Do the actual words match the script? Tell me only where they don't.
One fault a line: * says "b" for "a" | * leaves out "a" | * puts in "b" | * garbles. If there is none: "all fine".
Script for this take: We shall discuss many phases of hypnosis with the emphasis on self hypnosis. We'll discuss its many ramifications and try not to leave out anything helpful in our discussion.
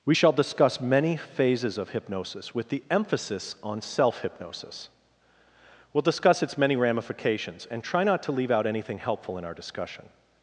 all fine